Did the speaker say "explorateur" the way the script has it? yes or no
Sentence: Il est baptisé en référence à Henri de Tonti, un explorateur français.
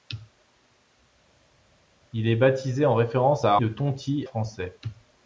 no